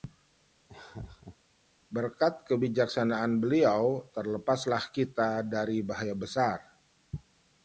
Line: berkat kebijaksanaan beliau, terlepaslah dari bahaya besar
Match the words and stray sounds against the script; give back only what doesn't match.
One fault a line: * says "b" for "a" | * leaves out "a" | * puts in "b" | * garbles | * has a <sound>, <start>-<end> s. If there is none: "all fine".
* has a laugh, 0.7-1.4 s
* puts in "kita"